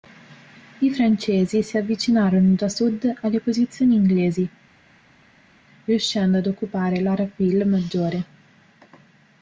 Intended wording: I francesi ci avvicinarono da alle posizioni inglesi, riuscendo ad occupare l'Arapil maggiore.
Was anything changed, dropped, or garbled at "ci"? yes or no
yes